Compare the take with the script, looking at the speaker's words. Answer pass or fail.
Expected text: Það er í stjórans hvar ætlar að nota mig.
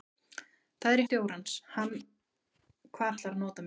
pass